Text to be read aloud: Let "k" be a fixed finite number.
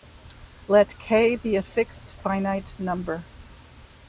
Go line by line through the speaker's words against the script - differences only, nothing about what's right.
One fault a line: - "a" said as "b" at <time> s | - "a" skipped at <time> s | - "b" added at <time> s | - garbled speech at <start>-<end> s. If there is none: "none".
none